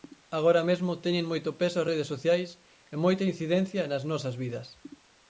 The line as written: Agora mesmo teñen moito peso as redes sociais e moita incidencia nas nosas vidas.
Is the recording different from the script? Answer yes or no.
no